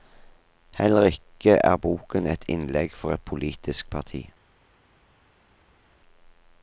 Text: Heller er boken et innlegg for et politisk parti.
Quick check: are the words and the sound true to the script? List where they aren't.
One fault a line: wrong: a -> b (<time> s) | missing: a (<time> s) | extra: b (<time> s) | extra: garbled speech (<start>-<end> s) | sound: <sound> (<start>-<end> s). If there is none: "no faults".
extra: ikke (1.0 s)